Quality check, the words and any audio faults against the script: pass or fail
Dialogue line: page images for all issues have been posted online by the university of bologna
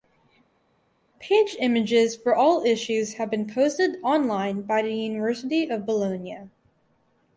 pass